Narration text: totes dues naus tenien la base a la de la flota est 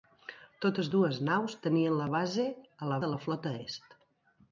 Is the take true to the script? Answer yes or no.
yes